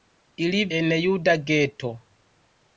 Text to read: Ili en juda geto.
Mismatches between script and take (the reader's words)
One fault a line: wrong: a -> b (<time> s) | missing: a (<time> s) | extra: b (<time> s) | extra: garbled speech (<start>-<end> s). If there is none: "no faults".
no faults